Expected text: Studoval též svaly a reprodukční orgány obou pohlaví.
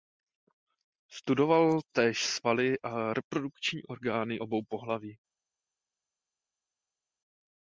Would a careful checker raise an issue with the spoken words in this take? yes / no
no